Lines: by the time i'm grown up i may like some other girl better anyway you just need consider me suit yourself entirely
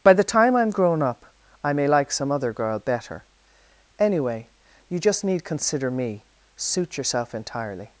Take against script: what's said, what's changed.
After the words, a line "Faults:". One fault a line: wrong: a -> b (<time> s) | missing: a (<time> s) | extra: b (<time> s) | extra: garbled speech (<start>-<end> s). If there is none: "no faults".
by the time i'm grown up i may like some other girl better anyway you just need consider me suit yourself entirely
Faults:
no faults